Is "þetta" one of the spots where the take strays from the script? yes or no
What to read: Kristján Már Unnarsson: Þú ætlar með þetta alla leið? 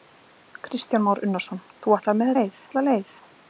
yes